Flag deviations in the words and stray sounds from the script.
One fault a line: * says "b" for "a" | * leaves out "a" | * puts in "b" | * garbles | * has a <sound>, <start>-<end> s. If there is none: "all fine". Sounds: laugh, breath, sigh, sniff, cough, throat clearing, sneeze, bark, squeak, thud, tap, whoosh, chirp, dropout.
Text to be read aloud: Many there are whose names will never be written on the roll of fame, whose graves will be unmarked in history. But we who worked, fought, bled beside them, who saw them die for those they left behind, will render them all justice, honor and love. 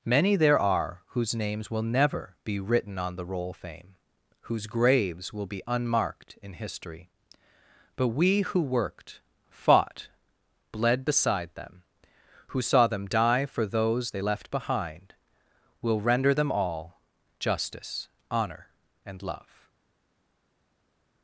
* leaves out "of"